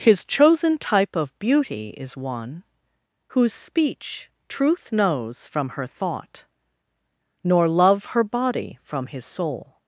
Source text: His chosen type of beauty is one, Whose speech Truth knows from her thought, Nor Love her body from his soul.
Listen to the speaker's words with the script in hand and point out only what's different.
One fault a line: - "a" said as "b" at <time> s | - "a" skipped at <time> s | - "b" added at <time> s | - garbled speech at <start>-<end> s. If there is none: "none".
none